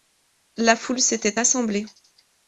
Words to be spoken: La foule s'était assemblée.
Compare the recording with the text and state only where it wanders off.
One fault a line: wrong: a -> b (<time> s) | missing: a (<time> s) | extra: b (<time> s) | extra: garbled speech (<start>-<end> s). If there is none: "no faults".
no faults